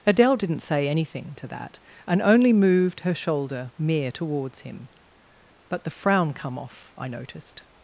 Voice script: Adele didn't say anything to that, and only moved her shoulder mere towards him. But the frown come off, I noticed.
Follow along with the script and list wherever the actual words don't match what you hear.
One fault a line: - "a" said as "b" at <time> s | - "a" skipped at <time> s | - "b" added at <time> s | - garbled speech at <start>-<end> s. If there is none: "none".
none